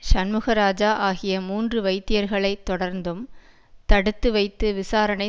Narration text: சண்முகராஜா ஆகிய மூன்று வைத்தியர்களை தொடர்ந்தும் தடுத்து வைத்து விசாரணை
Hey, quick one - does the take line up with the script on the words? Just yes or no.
yes